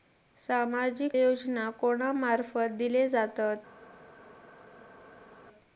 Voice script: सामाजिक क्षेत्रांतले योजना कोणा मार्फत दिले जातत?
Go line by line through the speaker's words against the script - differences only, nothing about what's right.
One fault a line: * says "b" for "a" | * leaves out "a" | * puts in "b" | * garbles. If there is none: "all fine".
* leaves out "क्षेत्रांतले"